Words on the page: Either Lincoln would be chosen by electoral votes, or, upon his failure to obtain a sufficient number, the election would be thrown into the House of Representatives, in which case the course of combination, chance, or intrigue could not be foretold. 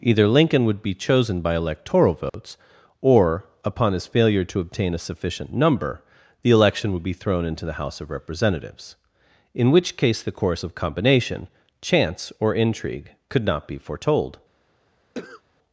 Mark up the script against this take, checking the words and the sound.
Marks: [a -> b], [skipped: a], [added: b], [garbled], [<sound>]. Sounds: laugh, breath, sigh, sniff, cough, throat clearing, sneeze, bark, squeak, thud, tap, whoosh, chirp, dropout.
Either Lincoln would be chosen by electoral votes, [dropout] or, upon his failure to obtain a sufficient number, the election would be thrown into the House of Representatives, in which case the course of combination, chance, or intrigue could not be foretold. [cough]